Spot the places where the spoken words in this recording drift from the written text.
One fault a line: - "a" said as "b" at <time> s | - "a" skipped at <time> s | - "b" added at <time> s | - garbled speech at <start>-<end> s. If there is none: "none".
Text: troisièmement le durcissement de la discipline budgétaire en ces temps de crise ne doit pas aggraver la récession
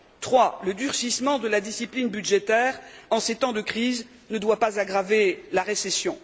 none